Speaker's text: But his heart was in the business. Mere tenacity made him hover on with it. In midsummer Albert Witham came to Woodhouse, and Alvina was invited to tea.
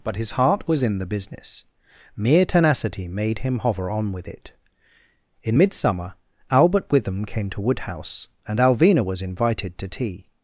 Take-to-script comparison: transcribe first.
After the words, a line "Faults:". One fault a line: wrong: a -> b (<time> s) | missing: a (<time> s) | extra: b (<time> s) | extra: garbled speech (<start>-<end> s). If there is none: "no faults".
But his heart was in the business. Mere tenacity made him hover on with it. In midsummer Albert Witham came to Woodhouse, and Alvina was invited to tea.
Faults:
no faults